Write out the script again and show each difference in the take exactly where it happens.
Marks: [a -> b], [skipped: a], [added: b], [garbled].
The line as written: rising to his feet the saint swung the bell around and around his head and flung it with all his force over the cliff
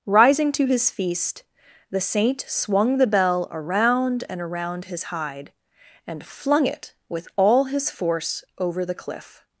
rising to his [feet -> feast] the saint swung the bell around and around his [head -> hide] and flung it with all his force over the cliff